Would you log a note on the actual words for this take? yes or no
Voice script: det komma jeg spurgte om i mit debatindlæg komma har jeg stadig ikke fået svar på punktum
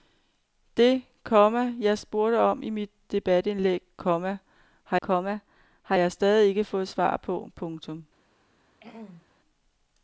yes